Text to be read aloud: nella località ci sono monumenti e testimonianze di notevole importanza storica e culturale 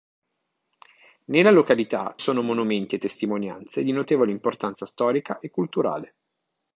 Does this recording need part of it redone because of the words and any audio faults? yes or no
yes